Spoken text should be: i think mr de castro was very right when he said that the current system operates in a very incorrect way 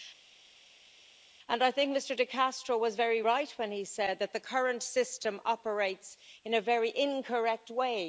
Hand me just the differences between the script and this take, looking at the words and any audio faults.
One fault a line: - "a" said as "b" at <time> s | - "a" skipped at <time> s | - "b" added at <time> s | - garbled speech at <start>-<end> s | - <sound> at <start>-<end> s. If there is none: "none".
none